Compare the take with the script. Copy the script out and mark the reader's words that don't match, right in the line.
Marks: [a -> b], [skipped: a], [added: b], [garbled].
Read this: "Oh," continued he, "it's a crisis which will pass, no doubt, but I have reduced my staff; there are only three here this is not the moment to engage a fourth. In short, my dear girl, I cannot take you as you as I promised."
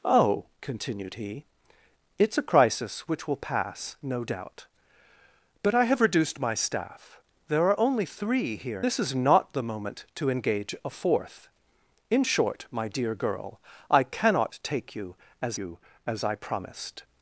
"Oh," continued he, "it's a crisis which will pass, no doubt, but I have reduced my staff; there are only three here this is not the moment to engage a fourth. In short, my dear girl, I cannot take you as you as I promised."